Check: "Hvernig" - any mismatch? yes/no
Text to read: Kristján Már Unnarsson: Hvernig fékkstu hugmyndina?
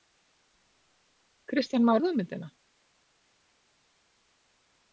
yes